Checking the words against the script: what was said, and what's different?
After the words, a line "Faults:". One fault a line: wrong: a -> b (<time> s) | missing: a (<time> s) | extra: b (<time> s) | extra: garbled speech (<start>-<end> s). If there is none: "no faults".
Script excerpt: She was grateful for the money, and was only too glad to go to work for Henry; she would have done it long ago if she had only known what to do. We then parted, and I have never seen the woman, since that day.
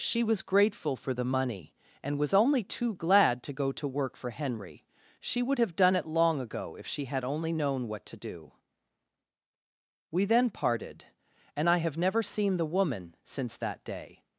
She was grateful for the money, and was only too glad to go to work for Henry; she would have done it long ago if she had only known what to do. We then parted, and I have never seen the woman, since that day.
Faults:
no faults